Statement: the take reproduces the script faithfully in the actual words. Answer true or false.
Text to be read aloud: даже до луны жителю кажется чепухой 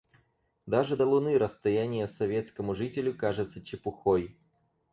false